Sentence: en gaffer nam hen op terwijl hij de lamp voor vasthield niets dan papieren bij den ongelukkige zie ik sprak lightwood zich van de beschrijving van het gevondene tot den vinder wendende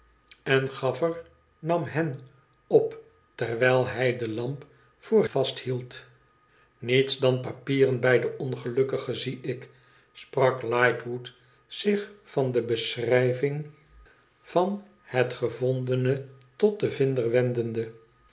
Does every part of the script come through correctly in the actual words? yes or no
yes